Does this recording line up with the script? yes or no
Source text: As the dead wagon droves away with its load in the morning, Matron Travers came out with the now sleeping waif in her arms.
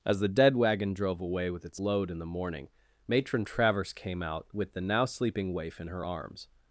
no